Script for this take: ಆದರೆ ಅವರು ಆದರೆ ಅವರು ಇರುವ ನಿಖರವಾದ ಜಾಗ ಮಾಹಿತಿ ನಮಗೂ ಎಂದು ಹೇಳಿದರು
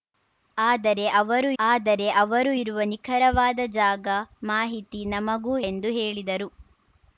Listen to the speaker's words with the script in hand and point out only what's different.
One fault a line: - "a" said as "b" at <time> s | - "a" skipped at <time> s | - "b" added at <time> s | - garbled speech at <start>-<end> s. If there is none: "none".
none